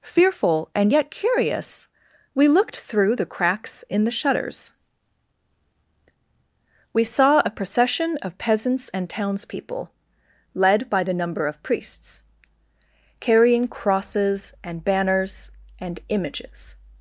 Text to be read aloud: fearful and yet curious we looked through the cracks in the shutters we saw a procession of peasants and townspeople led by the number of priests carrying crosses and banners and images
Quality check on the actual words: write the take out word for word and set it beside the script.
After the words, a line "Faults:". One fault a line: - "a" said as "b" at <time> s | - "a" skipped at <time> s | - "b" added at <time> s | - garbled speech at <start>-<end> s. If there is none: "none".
fearful and yet curious we looked through the cracks in the shutters we saw a procession of peasants and townspeople led by the number of priests carrying crosses and banners and images
Faults:
none